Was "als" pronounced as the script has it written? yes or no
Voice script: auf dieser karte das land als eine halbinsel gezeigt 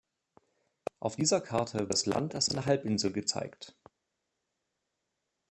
yes